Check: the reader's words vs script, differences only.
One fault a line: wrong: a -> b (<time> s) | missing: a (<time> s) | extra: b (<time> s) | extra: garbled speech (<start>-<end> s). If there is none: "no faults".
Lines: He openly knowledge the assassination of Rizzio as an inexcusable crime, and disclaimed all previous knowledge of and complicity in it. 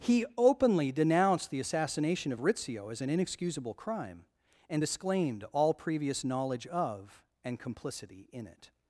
wrong: knowledge -> denounced (0.9 s)